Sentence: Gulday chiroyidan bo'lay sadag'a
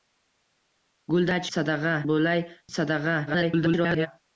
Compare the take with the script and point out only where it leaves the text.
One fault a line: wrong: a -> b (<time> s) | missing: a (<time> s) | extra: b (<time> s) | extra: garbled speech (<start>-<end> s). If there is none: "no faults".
wrong: chiroyidan -> sadag'a (1.6 s)
extra: garbled speech (3.3-4.1 s)